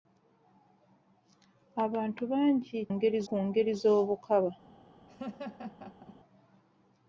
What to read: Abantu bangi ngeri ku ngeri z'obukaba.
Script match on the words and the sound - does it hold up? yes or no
no